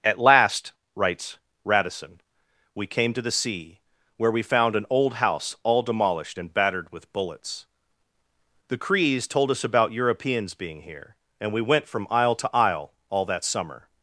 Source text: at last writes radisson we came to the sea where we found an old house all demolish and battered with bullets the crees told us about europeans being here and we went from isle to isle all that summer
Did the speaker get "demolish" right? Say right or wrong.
wrong